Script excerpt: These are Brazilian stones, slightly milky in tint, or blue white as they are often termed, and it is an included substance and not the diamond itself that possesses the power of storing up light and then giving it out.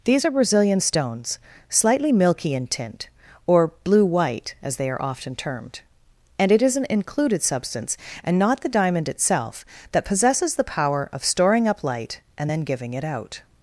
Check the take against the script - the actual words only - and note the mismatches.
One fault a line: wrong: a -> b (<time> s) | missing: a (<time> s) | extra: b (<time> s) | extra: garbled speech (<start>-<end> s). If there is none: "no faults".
no faults